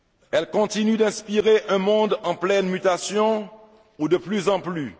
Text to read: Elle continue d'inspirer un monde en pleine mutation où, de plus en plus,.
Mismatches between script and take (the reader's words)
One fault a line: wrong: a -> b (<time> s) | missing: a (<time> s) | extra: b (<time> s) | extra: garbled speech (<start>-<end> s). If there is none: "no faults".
no faults